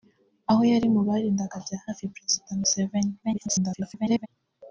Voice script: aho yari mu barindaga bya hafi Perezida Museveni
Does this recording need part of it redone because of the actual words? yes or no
yes